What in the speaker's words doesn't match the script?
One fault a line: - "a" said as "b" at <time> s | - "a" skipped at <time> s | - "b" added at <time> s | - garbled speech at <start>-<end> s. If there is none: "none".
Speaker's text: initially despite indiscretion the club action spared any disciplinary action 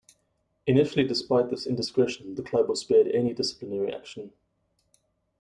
- "this" added at 1.5 s
- "action" said as "was" at 2.7 s